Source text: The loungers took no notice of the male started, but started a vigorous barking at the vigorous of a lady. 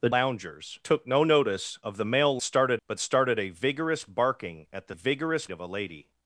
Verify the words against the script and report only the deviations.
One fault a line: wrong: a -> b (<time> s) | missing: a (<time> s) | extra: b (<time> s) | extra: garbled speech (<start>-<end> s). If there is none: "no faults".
no faults